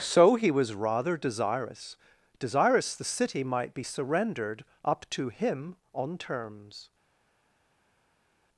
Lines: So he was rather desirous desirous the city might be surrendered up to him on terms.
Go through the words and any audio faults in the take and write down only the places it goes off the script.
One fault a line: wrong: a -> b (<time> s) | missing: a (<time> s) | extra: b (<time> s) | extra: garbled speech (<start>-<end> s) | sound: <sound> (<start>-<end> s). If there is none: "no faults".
no faults